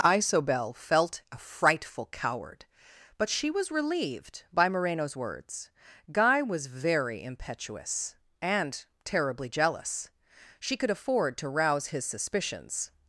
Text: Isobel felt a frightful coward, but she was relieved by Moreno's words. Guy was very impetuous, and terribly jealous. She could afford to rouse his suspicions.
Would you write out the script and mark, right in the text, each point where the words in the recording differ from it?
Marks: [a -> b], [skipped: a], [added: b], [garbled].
Isobel felt a frightful coward, but she was relieved by Moreno's words. Guy was very impetuous, and terribly jealous. She could afford to rouse his suspicions.